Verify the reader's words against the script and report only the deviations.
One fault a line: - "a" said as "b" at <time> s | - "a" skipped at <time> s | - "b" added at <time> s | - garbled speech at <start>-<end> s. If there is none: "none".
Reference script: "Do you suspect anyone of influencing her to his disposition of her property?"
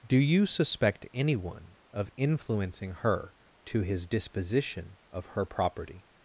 none